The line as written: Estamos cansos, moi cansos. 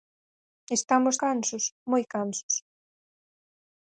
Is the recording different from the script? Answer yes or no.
no